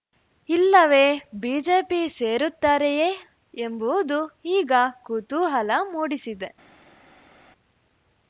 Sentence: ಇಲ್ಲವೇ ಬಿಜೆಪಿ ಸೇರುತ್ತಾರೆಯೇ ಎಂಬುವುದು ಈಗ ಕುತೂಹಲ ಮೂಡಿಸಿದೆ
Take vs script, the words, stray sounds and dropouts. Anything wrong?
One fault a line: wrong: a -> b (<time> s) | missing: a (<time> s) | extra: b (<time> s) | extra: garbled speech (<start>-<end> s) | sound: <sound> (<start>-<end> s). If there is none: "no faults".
no faults